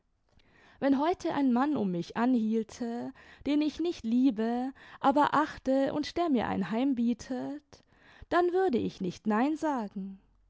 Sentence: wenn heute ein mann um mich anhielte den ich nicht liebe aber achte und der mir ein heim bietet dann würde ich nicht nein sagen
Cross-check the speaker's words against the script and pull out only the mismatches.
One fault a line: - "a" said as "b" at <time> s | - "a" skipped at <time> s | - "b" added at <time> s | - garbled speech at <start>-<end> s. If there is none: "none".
none